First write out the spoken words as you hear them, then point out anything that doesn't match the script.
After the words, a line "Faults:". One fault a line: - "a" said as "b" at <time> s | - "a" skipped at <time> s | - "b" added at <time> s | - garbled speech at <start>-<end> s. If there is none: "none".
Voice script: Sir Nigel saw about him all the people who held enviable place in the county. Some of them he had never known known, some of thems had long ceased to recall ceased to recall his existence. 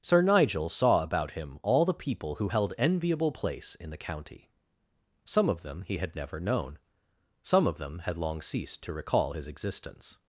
Sir Nigel saw about him all the people who held enviable place in the county. Some of them he had never known, some of them had long ceased to recall his existence.
Faults:
- "known" skipped at 6.8 s
- "thems" said as "them" at 7.8 s
- "ceased to recall" skipped at 9.3 s